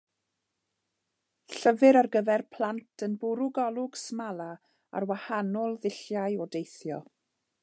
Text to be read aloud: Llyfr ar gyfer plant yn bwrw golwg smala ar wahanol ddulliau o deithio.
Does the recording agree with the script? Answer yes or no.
yes